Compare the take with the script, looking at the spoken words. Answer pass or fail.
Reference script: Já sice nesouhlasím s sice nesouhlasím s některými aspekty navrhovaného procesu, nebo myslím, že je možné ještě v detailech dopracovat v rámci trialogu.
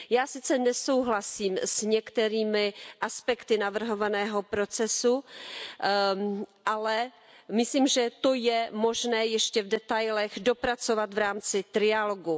fail